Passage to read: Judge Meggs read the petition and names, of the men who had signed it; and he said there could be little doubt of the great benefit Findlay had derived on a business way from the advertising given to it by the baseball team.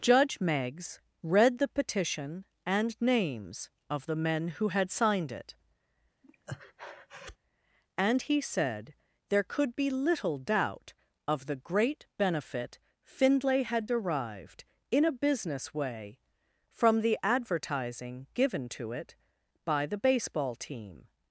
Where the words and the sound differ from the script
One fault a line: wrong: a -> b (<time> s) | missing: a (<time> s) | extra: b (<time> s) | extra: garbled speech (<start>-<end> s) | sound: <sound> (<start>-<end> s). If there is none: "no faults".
sound: breath (6.2-7.4 s)
wrong: on -> in (14.9 s)